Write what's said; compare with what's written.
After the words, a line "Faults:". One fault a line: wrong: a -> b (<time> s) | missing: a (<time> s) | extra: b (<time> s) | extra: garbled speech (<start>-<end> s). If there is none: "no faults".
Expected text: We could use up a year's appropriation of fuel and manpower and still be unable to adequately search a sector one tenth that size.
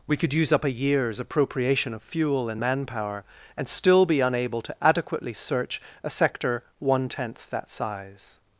We could use up a year's appropriation of fuel and manpower and still be unable to adequately search a sector one tenth that size.
Faults:
no faults